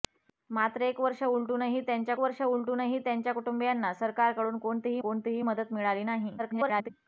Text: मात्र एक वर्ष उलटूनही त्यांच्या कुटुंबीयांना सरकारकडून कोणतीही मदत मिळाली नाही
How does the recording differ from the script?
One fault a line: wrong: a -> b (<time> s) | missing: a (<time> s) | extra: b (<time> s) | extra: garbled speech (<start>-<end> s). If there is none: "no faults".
extra: वर्ष उलटूनही त्यांच्या (2.2 s)
extra: कोणतीही (5.0 s)
extra: garbled speech (6.4-6.9 s)